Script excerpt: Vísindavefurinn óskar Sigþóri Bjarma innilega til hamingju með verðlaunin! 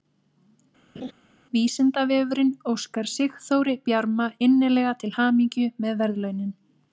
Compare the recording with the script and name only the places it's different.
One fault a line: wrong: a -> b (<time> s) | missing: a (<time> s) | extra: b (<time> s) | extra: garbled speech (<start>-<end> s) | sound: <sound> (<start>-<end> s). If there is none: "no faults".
sound: laugh (1.0-1.1 s)